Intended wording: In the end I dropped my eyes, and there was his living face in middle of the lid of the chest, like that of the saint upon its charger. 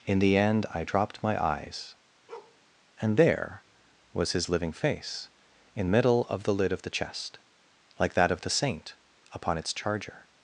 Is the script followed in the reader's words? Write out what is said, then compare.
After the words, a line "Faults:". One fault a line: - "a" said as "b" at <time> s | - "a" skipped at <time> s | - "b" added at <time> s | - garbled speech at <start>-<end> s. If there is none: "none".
In the end I dropped my eyes, and there was his living face in middle of the lid of the chest, like that of the saint upon its charger.
Faults:
none